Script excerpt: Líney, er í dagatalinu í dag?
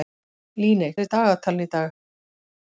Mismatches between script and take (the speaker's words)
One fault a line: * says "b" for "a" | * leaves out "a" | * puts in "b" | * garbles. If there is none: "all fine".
all fine